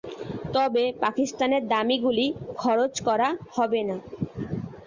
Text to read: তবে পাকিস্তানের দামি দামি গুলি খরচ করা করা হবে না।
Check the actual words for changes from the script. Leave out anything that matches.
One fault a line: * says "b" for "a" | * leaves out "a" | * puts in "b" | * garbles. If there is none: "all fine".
* leaves out "দামি"
* leaves out "করা"